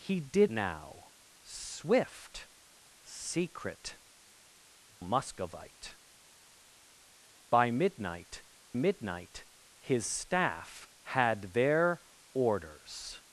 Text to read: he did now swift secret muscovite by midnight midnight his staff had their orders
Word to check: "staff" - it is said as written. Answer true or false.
true